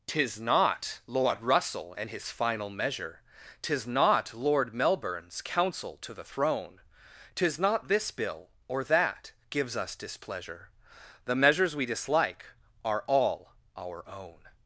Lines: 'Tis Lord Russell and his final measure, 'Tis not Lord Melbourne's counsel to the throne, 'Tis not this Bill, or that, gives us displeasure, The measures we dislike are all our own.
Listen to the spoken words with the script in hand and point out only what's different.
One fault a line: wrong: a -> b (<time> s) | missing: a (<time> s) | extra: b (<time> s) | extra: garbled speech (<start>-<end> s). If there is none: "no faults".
extra: not (0.4 s)